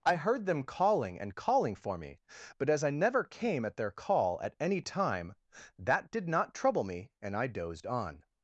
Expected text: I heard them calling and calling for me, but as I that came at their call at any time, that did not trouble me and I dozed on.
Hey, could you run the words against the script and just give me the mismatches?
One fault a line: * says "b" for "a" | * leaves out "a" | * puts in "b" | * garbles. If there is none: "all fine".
* says "never" for "that"